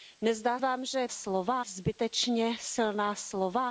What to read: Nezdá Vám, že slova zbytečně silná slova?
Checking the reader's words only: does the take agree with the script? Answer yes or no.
yes